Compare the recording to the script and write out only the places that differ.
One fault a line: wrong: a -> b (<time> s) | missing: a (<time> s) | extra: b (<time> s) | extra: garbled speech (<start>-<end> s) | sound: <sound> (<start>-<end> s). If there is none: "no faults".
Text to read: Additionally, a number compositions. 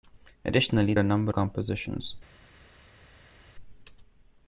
no faults